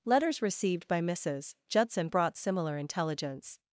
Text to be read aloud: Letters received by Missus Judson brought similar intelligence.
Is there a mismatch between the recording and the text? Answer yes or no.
no